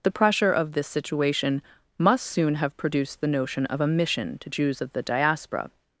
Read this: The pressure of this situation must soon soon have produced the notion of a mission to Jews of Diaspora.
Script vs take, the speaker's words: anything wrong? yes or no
yes